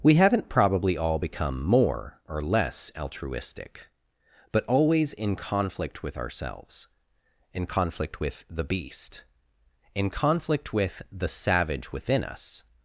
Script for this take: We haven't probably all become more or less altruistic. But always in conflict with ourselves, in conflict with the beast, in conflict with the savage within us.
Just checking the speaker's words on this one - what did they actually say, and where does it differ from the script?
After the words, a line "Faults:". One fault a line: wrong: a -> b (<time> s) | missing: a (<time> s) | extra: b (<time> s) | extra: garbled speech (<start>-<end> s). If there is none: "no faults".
We haven't probably all become more or less altruistic. But always in conflict with ourselves, in conflict with the beast, in conflict with the savage within us.
Faults:
no faults